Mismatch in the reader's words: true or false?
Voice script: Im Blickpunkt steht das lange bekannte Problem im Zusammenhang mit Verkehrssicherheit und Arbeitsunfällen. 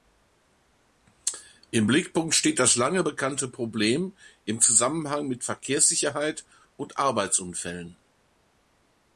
false